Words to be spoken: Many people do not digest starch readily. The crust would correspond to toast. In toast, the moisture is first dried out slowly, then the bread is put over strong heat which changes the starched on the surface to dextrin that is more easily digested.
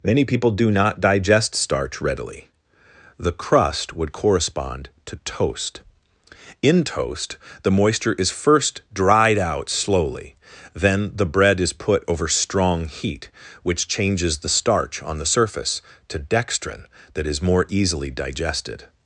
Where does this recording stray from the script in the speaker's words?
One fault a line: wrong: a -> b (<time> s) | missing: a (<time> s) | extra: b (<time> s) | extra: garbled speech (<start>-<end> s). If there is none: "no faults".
wrong: starched -> starch (14.5 s)